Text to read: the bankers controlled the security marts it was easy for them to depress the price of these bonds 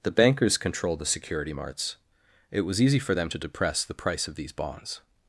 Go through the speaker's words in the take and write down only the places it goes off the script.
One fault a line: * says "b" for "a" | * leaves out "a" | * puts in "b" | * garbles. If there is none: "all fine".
all fine